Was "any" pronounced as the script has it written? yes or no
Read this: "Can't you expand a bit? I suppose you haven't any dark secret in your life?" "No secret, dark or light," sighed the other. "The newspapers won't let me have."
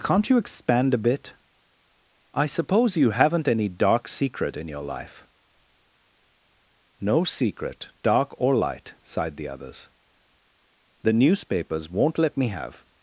yes